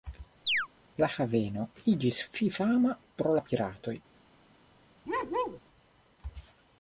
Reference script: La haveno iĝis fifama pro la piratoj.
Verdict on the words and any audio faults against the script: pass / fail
fail